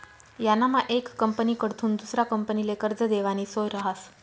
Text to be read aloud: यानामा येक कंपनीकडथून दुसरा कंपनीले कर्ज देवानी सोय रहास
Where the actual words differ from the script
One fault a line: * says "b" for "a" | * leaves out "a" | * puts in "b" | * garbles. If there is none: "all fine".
all fine